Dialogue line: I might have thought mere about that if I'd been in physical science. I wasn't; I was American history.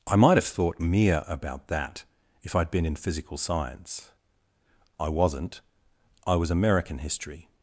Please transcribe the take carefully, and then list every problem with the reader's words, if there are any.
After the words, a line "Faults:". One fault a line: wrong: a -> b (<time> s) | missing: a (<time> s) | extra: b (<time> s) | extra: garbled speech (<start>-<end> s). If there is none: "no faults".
I might have thought mere about that if I'd been in physical science. I wasn't; I was American history.
Faults:
no faults